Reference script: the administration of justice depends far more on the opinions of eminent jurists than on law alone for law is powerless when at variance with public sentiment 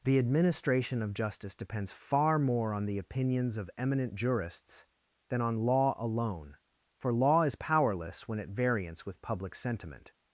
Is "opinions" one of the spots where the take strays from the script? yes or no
no